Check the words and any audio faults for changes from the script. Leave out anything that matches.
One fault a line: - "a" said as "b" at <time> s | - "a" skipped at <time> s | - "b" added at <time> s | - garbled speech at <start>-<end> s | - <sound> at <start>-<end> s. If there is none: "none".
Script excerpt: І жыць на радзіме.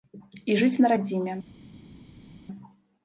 none